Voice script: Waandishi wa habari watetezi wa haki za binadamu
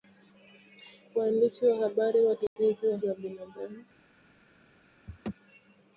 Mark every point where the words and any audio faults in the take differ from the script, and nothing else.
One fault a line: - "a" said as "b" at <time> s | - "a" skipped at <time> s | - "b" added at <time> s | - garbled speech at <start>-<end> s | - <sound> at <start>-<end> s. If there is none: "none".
- dropout at 2.5-2.6 s
- "haki" skipped at 3.0 s
- laugh at 5.1-5.3 s